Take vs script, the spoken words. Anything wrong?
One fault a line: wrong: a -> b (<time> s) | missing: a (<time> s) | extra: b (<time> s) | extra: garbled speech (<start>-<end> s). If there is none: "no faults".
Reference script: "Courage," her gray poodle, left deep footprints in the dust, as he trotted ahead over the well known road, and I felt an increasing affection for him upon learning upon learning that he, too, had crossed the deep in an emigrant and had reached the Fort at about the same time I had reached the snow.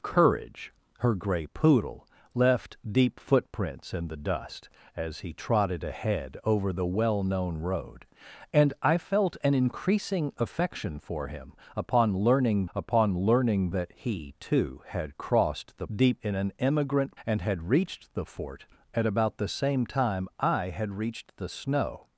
no faults